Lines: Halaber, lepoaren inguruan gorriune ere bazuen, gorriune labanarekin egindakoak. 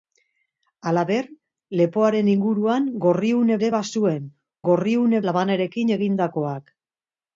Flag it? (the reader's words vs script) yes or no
no